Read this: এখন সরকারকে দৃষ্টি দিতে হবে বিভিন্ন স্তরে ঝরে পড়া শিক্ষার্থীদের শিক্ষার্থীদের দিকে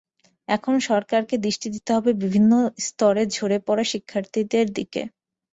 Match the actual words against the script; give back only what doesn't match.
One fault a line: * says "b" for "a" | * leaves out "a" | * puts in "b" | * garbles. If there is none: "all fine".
* leaves out "শিক্ষার্থীদের"